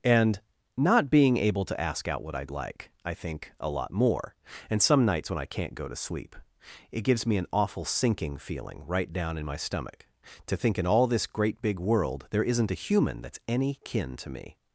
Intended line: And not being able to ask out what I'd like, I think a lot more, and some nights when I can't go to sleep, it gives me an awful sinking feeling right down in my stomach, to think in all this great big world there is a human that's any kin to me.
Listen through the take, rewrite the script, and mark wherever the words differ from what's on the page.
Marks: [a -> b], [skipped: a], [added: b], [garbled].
And not being able to ask out what I'd like, I think a lot more, and some nights when I can't go to sleep, it gives me an awful sinking feeling right down in my stomach, to think in all this great big world there [is -> isn't] a human that's any kin to me.